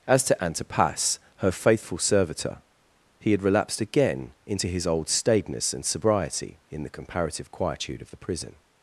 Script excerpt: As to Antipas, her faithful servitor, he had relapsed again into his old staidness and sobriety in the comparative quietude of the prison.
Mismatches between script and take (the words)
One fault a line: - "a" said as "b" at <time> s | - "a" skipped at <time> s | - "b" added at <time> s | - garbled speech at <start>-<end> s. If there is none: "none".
none